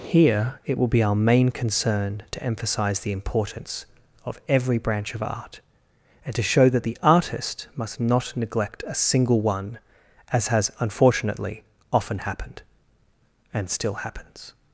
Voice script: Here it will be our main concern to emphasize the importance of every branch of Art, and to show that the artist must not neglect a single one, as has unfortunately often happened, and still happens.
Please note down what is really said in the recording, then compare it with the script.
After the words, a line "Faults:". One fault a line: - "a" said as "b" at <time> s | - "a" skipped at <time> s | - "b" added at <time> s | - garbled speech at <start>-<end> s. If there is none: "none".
Here it will be our main concern to emphasize the importance of every branch of Art, and to show that the artist must not neglect a single one, as has unfortunately often happened, and still happens.
Faults:
none